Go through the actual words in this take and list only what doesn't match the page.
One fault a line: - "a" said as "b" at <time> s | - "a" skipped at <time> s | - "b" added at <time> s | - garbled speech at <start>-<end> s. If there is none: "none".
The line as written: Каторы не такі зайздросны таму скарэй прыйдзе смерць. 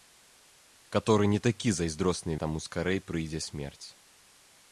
none